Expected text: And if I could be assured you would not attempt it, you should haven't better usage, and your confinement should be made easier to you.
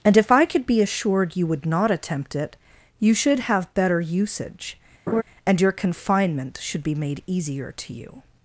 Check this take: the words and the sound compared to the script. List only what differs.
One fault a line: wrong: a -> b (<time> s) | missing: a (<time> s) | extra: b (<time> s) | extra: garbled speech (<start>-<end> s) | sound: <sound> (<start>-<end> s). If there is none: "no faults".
wrong: haven't -> have (3.4 s)
sound: laugh (5.1-5.2 s)